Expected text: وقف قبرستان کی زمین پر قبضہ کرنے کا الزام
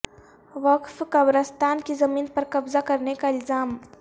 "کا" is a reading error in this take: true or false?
false